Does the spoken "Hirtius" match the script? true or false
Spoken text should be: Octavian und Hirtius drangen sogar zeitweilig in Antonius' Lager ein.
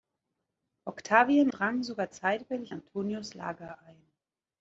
false